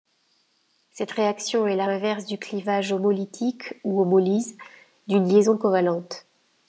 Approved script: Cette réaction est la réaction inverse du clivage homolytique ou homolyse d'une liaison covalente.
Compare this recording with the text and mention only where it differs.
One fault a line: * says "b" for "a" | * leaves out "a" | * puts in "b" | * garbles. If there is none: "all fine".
* leaves out "réaction"